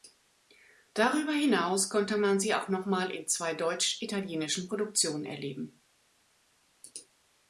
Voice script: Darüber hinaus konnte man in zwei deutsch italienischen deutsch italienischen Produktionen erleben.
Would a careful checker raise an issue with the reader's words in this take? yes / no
yes